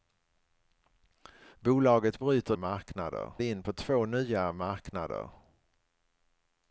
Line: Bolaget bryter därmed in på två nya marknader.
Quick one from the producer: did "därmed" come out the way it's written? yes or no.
no